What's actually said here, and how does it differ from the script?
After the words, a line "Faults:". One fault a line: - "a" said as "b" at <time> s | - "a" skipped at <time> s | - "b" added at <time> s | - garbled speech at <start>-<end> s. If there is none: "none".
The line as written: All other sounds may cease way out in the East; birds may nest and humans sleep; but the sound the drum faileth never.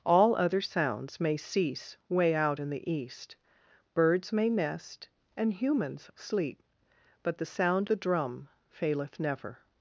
All other sounds may cease way out in the East; birds may nest and humans sleep; but the sound the drum faileth never.
Faults:
none